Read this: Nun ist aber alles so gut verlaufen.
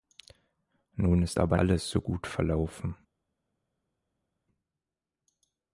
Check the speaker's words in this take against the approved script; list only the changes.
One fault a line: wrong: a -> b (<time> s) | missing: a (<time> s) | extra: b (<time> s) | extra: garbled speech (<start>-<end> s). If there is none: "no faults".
no faults